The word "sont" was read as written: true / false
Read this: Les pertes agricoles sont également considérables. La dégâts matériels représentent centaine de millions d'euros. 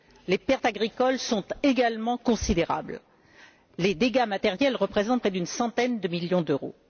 true